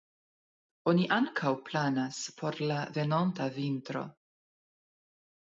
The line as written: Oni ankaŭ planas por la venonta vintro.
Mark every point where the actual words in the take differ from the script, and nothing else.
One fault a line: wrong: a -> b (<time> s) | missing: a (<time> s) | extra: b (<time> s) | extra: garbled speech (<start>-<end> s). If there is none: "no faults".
no faults